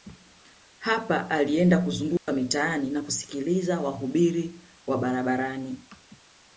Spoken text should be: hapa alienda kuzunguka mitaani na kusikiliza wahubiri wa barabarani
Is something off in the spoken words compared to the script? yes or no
no